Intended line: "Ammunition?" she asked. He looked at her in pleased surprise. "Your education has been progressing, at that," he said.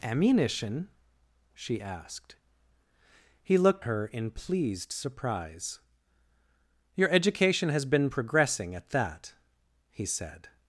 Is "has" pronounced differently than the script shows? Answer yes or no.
no